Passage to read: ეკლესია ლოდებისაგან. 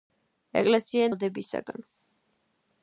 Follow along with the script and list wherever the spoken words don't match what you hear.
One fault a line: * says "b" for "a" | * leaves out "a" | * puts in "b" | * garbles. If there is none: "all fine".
all fine